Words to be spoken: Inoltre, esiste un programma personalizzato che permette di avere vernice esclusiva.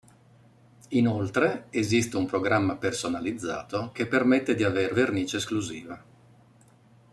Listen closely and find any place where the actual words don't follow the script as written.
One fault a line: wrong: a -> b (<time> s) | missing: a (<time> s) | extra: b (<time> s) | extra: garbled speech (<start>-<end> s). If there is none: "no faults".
no faults